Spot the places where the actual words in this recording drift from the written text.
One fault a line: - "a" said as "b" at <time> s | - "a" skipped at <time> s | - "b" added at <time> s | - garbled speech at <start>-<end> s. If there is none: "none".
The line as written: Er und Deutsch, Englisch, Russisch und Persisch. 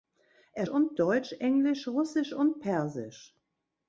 none